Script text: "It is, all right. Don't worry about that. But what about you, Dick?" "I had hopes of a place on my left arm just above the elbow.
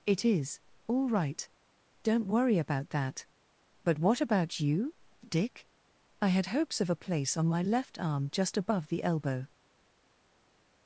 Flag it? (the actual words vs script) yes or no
no